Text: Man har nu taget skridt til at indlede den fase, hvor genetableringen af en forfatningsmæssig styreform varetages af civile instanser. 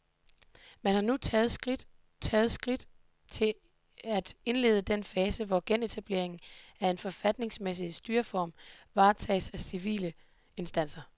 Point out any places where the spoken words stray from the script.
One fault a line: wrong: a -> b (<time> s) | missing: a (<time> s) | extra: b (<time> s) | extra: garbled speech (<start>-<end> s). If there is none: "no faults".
extra: taget skridt (2.2 s)